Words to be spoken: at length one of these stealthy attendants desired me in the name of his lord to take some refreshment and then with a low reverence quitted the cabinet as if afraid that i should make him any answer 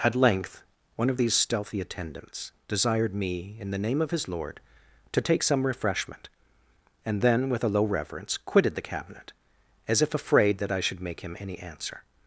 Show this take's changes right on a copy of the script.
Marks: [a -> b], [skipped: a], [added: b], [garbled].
at length one of these stealthy attendants desired me in the name of his lord to take some refreshment and then with a low reverence quitted the cabinet as if afraid that i should make him any answer